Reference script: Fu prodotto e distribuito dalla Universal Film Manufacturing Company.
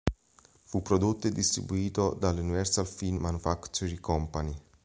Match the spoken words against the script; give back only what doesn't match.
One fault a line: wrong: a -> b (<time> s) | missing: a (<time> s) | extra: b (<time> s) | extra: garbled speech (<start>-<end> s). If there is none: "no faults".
no faults